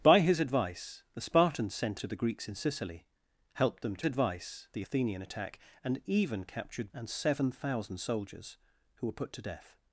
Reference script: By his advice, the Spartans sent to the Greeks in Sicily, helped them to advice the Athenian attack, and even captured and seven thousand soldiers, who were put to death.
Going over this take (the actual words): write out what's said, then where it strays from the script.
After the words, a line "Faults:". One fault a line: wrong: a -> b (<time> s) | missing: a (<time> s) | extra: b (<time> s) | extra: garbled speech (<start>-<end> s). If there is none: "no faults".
By his advice, the Spartans sent to the Greeks in Sicily, helped them to advice the Athenian attack, and even captured and seven thousand soldiers, who were put to death.
Faults:
no faults